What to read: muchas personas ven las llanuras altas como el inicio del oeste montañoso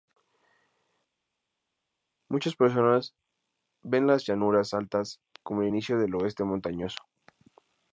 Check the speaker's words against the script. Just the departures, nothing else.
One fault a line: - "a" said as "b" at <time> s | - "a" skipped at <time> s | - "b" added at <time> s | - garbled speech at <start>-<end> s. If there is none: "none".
none